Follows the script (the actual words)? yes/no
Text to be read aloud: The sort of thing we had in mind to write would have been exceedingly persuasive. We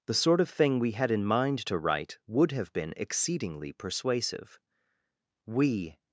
yes